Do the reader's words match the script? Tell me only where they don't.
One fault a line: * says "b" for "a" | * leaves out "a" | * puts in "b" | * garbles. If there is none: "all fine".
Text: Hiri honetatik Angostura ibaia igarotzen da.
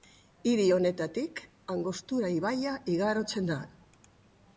all fine